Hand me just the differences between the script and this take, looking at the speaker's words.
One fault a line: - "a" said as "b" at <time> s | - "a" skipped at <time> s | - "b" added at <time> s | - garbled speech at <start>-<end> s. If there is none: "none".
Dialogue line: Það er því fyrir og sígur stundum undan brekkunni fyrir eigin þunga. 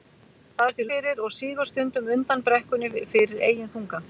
none